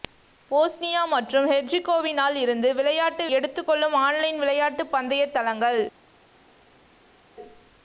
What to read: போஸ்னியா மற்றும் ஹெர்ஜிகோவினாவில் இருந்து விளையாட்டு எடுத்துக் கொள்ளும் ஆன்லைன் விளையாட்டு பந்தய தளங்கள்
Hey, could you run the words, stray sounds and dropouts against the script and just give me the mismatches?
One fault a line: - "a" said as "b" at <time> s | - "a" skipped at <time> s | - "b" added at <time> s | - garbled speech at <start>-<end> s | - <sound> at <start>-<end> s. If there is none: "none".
none